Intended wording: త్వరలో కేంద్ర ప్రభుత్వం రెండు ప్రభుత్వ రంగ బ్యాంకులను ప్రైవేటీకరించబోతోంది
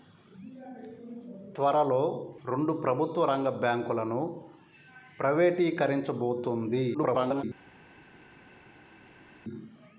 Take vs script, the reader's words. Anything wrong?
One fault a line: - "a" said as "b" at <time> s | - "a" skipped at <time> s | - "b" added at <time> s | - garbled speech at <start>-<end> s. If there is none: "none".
- "కేంద్ర ప్రభుత్వం" skipped at 2.0 s
- garbled speech at 6.9-7.4 s